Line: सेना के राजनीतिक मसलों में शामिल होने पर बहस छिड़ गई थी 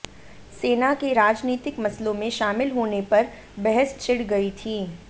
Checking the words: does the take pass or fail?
pass